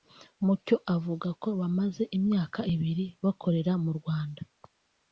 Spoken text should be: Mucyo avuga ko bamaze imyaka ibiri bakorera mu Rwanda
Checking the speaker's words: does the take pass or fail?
pass